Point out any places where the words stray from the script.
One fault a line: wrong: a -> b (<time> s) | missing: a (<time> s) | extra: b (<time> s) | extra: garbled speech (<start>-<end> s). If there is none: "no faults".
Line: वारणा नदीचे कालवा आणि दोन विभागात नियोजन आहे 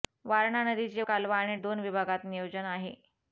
no faults